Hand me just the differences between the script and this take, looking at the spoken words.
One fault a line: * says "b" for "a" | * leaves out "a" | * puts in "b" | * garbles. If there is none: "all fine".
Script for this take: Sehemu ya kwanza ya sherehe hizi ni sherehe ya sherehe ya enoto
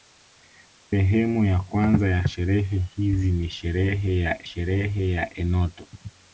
all fine